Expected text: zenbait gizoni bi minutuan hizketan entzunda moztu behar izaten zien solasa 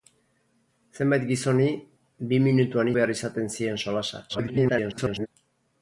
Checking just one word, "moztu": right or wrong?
wrong